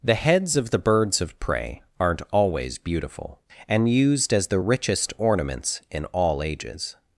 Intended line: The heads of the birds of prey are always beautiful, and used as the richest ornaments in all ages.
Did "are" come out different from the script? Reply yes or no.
yes